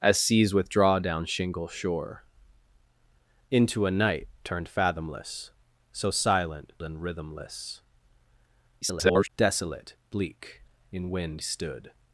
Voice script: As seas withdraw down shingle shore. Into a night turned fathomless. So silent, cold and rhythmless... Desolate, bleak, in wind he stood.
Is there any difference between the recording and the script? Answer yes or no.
yes